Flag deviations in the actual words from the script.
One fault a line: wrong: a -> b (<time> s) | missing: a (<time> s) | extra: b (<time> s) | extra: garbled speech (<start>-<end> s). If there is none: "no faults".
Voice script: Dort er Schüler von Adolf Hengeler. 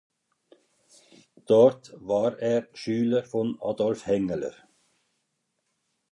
extra: war (2.0 s)